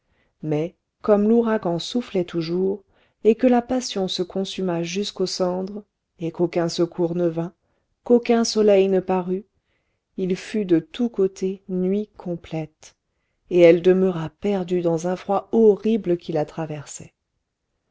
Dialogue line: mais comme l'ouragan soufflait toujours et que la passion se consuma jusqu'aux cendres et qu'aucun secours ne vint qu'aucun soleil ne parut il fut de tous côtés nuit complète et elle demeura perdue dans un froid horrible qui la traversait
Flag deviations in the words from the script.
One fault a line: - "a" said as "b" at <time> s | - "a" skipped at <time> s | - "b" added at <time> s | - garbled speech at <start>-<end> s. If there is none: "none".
none